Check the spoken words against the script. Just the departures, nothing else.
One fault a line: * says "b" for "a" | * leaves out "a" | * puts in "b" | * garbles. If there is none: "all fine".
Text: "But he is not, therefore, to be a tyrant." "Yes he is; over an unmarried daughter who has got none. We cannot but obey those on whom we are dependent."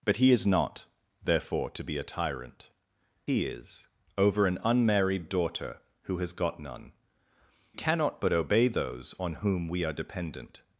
* leaves out "Yes"
* leaves out "We"